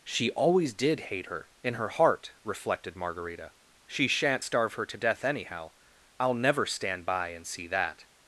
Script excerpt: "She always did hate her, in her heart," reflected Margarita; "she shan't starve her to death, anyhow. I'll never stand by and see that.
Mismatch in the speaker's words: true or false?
false